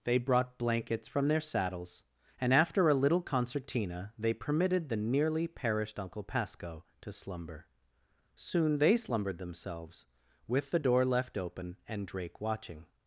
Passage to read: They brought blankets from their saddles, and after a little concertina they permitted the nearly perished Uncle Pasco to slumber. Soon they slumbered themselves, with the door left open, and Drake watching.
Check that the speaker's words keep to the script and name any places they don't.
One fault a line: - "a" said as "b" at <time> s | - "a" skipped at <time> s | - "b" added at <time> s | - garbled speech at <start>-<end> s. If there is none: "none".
none